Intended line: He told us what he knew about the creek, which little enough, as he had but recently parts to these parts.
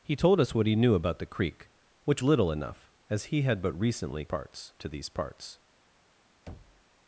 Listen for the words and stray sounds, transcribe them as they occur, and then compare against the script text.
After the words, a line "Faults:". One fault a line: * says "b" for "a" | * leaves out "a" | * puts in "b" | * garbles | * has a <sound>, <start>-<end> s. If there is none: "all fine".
He told us what he knew about the creek, which little enough, as he had but recently parts to these parts.
Faults:
* has a thud, 6.5-6.8 s